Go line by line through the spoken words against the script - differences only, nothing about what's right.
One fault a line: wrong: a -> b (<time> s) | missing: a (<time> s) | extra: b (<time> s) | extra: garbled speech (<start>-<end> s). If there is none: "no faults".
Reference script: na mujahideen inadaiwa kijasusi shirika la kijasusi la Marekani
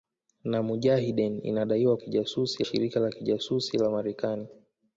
no faults